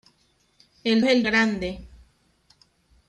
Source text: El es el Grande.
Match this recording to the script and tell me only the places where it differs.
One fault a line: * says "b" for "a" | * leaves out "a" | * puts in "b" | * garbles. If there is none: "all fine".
all fine